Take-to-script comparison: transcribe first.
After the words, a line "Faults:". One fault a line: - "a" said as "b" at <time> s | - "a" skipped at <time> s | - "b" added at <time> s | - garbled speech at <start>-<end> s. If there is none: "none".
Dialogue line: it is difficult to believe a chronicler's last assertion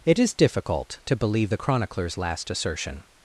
it is difficult to believe the chronicler's last assertion
Faults:
- "a" said as "the" at 1.5 s